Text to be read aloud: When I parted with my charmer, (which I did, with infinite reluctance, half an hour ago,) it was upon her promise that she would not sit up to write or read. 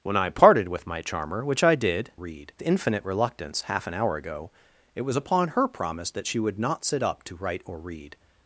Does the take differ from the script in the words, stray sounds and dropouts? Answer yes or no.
yes